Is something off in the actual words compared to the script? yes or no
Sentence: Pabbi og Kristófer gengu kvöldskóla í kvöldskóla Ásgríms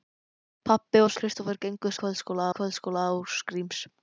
no